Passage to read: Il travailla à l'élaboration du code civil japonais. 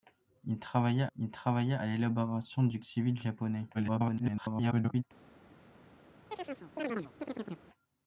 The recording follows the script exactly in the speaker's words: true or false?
false